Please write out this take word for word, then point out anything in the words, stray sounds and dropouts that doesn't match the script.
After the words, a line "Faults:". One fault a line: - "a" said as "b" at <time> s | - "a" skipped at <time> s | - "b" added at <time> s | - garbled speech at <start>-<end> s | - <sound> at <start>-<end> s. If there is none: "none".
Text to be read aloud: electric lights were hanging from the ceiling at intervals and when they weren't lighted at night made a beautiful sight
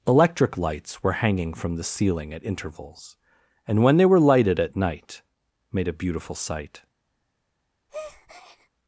electric lights were hanging from the ceiling at intervals and when they were lighted at night made a beautiful sight
Faults:
- "weren't" said as "were" at 4.0 s
- breath at 7.9-8.7 s